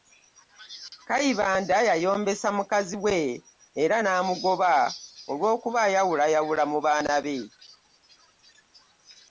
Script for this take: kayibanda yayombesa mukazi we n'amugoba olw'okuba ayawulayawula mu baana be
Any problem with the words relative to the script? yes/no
yes